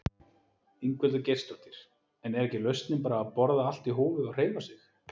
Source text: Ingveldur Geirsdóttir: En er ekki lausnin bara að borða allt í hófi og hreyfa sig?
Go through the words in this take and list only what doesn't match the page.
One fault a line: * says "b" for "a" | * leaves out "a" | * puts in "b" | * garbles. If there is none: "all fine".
all fine